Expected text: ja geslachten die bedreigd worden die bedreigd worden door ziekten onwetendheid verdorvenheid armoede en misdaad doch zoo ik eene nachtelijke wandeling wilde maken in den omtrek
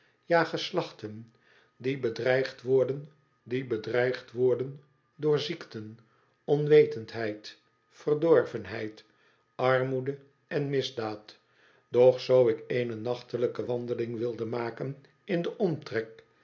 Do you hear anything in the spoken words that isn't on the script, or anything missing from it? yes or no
no